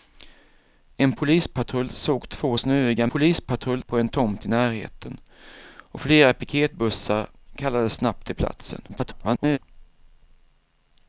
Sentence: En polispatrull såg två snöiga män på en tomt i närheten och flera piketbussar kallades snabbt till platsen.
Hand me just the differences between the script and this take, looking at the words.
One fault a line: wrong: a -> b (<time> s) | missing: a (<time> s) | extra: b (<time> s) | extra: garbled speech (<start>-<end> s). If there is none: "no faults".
wrong: män -> polispatrull (3.1 s)
extra: garbled speech (8.9-9.6 s)